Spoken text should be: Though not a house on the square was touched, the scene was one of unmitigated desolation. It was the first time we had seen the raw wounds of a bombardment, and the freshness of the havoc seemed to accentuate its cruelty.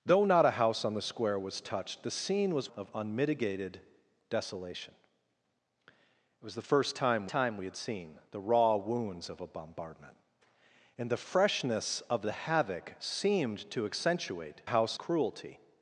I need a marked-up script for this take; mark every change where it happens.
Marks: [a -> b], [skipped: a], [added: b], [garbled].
Though not a house on the square was touched, the scene was [skipped: one] of unmitigated desolation. It was the first time [added: time] we had seen the raw wounds of a bombardment, and the freshness of the havoc seemed to accentuate [its -> house] cruelty.